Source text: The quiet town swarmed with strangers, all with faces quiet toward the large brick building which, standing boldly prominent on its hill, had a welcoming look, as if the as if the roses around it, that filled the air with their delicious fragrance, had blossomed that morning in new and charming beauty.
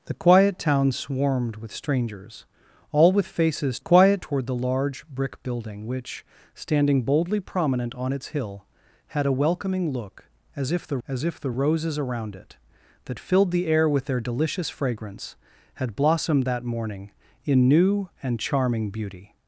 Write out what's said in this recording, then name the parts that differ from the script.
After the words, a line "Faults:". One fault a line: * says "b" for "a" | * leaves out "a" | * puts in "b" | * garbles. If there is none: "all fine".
The quiet town swarmed with strangers, all with faces quiet toward the large brick building which, standing boldly prominent on its hill, had a welcoming look, as if the as if the roses around it, that filled the air with their delicious fragrance, had blossomed that morning in new and charming beauty.
Faults:
all fine